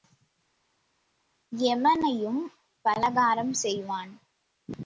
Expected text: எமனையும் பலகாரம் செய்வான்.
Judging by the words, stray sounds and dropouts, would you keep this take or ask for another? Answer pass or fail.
pass